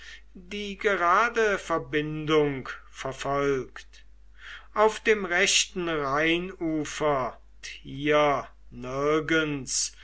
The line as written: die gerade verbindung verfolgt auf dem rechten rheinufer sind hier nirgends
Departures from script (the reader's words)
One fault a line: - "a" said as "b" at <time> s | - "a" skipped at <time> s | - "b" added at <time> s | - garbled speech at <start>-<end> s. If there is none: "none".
- "sind" skipped at 7.4 s